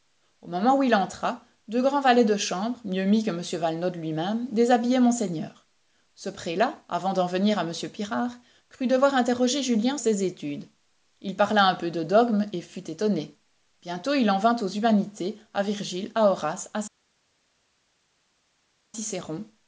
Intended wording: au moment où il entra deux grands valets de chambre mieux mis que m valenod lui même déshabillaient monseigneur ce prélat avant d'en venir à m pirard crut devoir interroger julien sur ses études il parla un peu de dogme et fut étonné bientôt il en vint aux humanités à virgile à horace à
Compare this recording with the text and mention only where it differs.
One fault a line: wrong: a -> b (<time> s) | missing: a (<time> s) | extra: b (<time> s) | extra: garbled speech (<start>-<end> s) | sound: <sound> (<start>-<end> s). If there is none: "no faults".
missing: sur (10.0 s)